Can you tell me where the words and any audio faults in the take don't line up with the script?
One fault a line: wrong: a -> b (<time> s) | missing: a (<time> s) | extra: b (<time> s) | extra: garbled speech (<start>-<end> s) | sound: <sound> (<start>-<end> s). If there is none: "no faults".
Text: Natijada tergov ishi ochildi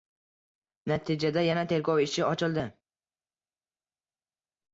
extra: yana (1.5 s)